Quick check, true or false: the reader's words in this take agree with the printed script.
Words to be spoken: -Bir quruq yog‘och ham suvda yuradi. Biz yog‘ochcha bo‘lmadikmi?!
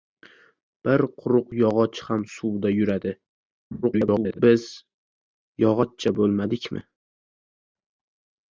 false